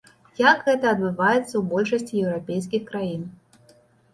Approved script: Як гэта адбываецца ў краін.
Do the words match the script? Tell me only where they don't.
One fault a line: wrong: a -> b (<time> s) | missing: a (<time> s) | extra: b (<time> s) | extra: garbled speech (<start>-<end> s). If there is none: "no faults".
extra: большасці еўрапейскіх (1.7 s)